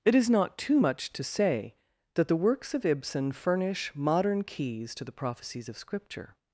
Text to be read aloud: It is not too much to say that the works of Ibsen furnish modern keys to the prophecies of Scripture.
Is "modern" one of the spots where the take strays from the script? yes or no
no